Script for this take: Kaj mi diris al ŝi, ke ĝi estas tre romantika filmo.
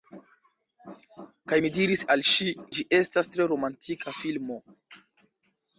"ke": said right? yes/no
no